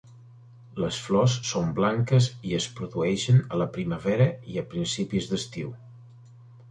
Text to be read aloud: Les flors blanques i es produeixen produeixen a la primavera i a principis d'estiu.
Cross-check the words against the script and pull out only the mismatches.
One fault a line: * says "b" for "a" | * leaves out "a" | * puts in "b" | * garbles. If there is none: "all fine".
* puts in "són"
* leaves out "produeixen"